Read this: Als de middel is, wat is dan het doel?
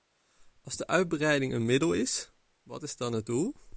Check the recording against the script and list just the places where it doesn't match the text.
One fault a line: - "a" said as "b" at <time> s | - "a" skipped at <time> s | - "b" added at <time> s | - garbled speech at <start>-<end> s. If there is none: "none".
- "uitbreiding een" added at 0.9 s